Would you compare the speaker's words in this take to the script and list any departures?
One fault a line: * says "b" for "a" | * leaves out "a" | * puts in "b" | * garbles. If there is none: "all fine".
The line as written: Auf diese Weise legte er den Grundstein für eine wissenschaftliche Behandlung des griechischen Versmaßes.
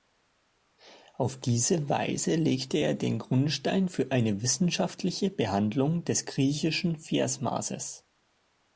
all fine